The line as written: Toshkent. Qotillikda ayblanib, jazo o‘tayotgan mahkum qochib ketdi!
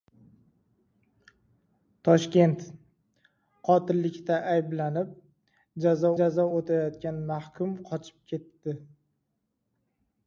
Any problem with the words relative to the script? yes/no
yes